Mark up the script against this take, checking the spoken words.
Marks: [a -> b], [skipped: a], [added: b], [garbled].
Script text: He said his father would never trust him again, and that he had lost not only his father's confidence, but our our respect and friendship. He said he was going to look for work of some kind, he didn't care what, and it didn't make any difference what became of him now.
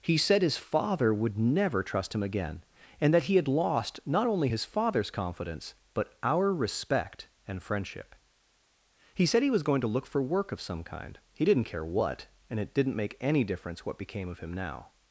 He said his father would never trust him again, and that he had lost not only his father's confidence, but our [skipped: our] respect and friendship. He said he was going to look for work of some kind, he didn't care what, and it didn't make any difference what became of him now.